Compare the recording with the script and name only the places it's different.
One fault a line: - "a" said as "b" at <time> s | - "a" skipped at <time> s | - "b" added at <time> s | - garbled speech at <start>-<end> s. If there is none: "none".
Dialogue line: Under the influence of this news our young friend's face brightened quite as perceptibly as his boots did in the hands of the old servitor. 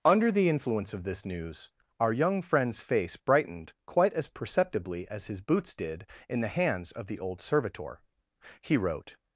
- "He wrote" added at 8.6 s